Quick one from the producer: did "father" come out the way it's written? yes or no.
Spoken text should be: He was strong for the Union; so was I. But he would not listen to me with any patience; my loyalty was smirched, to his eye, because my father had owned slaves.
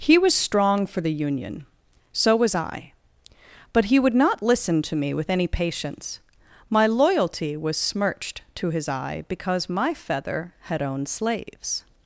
no